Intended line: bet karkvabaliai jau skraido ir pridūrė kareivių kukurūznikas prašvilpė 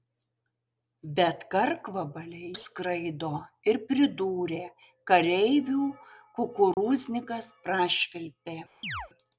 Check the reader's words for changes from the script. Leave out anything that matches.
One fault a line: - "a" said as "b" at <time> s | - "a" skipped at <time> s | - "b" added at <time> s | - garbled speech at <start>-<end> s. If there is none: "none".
- "jau" skipped at 2.5 s